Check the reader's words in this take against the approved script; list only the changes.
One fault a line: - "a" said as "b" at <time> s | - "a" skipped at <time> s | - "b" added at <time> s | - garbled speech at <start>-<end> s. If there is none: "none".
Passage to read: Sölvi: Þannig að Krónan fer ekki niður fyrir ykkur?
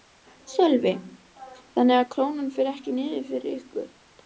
none